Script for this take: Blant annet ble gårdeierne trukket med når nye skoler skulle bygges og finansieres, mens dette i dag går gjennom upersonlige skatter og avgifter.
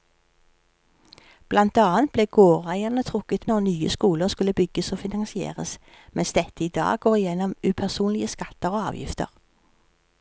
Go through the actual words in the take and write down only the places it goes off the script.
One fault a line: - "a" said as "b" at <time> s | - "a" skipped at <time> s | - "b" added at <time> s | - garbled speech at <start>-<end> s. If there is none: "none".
- "med" skipped at 3.5 s